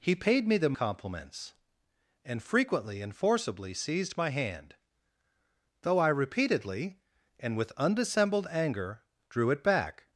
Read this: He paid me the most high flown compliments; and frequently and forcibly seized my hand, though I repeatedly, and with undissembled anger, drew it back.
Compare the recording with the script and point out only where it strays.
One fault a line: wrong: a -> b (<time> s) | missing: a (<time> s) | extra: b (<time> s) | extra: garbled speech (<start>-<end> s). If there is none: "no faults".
missing: most high flown (0.8 s)